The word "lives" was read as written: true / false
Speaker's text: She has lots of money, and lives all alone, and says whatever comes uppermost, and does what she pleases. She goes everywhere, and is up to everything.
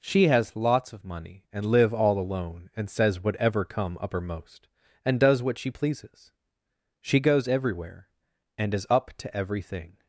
false